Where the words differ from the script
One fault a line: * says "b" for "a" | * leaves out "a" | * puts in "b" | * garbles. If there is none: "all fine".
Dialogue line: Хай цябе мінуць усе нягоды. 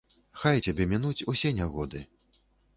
all fine